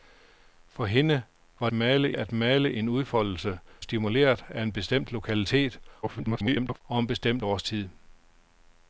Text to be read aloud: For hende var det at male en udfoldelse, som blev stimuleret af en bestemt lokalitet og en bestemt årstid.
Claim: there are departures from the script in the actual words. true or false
true